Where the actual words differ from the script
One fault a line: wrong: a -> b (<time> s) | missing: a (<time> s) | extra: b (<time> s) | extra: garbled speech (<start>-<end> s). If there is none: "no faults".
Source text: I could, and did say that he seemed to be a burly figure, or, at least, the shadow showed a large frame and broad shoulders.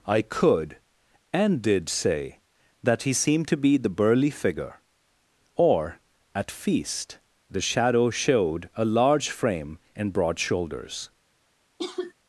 wrong: a -> the (3.8 s)
wrong: least -> feast (6.5 s)